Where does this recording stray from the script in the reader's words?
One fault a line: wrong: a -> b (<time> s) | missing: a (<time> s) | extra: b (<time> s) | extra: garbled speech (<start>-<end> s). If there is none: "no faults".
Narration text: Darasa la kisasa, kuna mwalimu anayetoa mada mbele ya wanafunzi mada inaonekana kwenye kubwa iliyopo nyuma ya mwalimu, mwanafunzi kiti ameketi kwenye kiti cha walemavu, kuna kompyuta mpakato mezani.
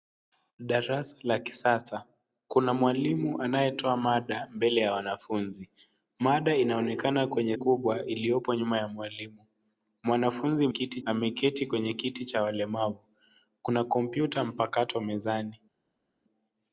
no faults